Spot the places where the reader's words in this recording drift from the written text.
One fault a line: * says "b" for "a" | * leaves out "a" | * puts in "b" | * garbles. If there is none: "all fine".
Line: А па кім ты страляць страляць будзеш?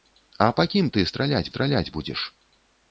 all fine